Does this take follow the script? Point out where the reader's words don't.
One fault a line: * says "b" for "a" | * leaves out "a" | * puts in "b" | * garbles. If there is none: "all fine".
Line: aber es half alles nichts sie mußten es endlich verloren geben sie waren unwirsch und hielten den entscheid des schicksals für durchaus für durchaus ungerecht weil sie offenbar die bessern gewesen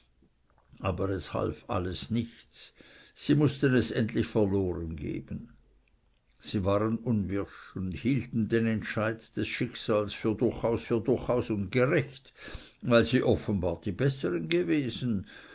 all fine